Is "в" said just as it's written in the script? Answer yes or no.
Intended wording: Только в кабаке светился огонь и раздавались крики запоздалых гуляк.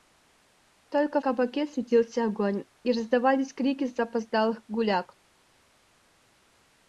no